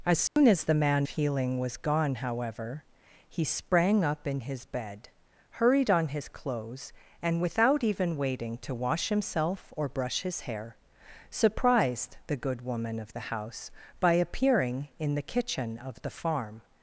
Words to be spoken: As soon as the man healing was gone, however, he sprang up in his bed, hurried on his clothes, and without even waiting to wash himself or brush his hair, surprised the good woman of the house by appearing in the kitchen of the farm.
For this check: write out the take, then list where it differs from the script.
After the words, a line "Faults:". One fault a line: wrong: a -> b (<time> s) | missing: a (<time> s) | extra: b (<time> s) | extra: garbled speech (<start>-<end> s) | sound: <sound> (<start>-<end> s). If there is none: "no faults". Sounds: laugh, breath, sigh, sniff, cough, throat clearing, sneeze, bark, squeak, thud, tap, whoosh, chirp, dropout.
As soon as the man healing was gone, however, he sprang up in his bed, hurried on his clothes, and without even waiting to wash himself or brush his hair, surprised the good woman of the house by appearing in the kitchen of the farm.
Faults:
sound: dropout (0.3-0.4 s)